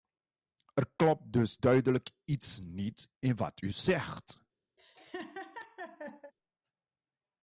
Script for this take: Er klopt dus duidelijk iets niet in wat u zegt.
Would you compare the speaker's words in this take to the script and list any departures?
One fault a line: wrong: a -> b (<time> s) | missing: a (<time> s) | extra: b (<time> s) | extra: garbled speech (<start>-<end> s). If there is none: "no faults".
no faults